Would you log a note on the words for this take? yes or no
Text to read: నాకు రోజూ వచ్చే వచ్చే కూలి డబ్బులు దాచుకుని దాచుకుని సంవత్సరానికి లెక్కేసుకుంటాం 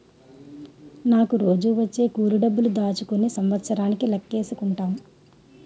yes